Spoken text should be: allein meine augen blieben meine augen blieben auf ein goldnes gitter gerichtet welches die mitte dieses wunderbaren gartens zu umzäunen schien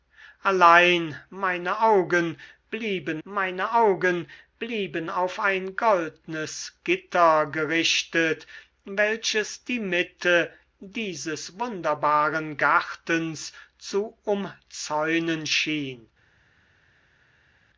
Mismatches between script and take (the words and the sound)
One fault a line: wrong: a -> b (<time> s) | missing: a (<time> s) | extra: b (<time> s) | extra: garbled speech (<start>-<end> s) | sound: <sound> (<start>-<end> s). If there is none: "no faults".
no faults